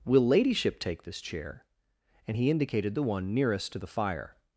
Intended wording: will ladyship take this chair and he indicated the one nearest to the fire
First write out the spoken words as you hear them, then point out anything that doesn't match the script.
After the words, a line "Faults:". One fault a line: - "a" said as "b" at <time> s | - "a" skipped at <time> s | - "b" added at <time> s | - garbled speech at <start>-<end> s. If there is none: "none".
will ladyship take this chair and he indicated the one nearest to the fire
Faults:
none